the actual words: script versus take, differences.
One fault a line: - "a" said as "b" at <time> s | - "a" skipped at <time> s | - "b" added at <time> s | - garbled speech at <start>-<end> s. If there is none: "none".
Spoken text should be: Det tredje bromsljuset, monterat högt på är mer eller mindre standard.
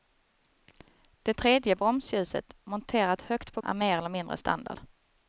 none